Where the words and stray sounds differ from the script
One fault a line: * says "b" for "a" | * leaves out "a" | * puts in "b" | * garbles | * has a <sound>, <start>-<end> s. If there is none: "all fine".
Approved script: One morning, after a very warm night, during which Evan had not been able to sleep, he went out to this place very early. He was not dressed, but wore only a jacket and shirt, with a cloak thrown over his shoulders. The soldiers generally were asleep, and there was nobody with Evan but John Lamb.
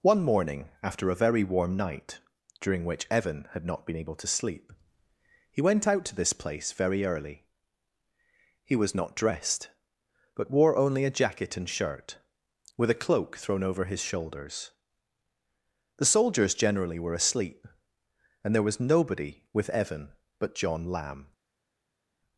all fine